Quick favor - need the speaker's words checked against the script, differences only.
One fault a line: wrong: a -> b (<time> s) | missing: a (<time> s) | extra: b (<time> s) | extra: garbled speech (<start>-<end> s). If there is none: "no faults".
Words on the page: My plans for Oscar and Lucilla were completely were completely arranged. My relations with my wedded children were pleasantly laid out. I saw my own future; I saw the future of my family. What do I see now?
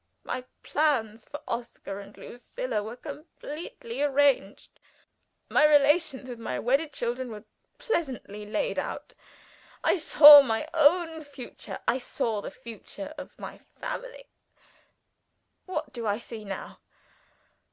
missing: were completely (4.0 s)